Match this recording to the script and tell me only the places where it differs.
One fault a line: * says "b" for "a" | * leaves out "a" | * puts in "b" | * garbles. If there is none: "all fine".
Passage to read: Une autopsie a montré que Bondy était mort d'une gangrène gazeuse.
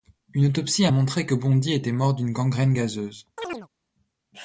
all fine